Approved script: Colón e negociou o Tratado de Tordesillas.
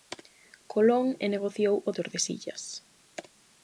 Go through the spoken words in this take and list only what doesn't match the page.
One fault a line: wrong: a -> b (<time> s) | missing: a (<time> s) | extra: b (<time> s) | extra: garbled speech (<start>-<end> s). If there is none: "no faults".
missing: Tratado de (1.9 s)